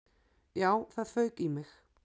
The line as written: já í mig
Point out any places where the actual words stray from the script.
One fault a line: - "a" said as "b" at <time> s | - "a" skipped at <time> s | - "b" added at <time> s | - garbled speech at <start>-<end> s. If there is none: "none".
- "það fauk" added at 0.9 s